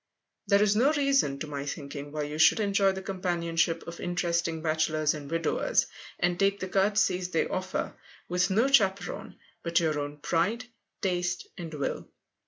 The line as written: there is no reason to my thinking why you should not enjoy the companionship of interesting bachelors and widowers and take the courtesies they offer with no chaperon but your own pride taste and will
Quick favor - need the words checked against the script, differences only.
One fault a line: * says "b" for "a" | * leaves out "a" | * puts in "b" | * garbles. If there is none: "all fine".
* leaves out "not"